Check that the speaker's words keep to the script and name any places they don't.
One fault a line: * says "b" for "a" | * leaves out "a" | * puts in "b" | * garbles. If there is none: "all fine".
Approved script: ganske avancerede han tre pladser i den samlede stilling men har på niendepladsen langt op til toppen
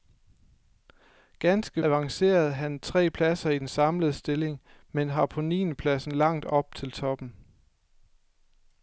all fine